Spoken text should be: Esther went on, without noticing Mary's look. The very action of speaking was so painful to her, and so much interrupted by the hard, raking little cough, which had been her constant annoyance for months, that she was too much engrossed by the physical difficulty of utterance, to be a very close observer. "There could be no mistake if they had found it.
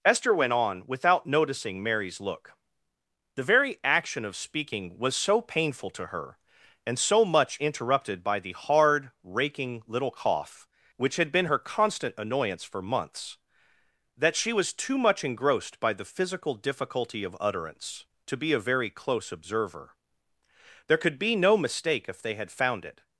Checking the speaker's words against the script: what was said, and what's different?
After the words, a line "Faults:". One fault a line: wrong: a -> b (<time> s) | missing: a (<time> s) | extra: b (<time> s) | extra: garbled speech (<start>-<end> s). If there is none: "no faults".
Esther went on, without noticing Mary's look. The very action of speaking was so painful to her, and so much interrupted by the hard, raking little cough, which had been her constant annoyance for months, that she was too much engrossed by the physical difficulty of utterance, to be a very close observer. "There could be no mistake if they had found it.
Faults:
no faults